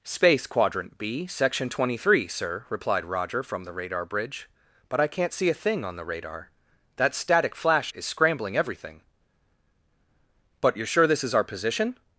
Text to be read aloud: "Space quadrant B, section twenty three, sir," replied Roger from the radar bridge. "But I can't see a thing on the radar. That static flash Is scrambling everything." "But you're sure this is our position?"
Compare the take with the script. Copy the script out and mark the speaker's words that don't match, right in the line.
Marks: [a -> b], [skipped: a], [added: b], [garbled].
"Space quadrant B, section twenty three, sir," replied Roger from the radar bridge. "But I can't see a thing on the radar. That static flash Is scrambling everything." "But you're sure this is our position?"